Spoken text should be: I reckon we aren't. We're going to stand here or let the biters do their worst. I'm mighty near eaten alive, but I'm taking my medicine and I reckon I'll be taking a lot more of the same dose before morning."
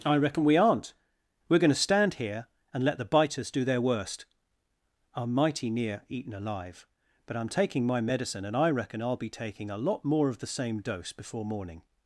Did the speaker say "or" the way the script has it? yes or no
no